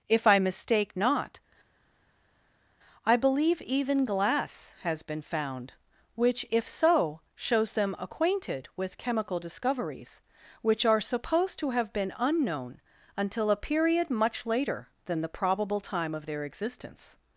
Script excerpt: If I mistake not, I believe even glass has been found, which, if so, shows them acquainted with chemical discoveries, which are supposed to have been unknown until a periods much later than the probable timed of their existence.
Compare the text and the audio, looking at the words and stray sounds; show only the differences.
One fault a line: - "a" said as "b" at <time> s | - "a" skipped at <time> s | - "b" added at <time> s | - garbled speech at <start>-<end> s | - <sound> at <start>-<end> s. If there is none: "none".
- "periods" said as "period" at 13.6 s
- "timed" said as "time" at 15.8 s